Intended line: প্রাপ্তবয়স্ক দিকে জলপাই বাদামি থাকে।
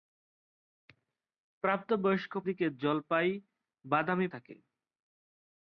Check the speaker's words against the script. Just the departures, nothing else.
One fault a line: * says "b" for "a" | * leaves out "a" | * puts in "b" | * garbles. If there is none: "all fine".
all fine